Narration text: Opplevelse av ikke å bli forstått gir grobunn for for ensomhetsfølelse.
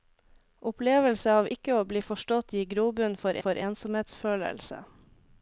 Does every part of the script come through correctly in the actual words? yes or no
yes